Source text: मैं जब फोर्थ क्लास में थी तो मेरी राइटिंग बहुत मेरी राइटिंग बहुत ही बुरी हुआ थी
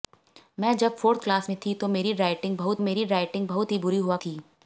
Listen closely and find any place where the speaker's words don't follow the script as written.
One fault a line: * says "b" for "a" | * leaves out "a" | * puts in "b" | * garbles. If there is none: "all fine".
all fine